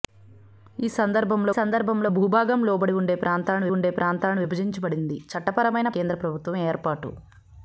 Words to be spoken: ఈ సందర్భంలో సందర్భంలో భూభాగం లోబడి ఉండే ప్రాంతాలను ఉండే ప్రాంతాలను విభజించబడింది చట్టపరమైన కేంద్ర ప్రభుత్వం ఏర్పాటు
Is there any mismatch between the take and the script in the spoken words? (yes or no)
no